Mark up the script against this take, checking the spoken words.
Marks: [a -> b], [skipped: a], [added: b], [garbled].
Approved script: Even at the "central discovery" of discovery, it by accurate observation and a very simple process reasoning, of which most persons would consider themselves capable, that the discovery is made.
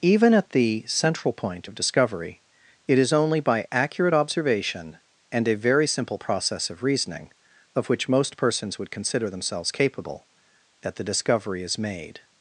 Even at the "central [discovery" -> point] of discovery, it [added: is only] by accurate observation and a very simple process [added: of] reasoning, of which most persons would consider themselves capable, that the discovery is made.